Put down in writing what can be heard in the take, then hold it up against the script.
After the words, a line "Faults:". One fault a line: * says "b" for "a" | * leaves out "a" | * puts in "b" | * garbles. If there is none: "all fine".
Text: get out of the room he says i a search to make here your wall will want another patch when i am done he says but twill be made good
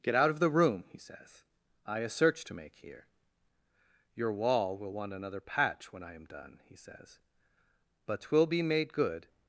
get out of the room he says i a search to make here your wall will want another patch when i am done he says but twill be made good
Faults:
all fine